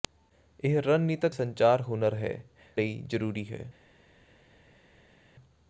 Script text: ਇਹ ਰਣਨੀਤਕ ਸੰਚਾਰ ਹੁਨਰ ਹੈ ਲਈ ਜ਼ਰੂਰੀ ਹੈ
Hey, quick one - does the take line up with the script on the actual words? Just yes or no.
yes